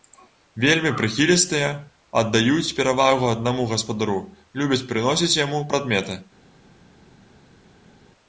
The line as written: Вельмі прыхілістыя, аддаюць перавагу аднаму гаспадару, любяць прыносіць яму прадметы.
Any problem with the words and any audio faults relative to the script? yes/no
no